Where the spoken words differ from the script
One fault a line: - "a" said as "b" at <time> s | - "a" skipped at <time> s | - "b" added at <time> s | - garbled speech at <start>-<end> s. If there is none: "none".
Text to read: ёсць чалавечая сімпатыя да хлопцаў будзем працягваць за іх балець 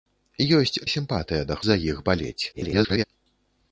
- "чалавечая" skipped at 0.8 s
- "хлопцаў будзем працягваць" skipped at 1.6 s
- garbled speech at 2.5-3.0 s